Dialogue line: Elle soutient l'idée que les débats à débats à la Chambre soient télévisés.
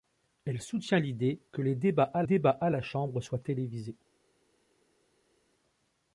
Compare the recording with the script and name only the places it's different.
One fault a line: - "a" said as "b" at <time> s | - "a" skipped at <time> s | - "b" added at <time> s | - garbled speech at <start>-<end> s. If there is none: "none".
none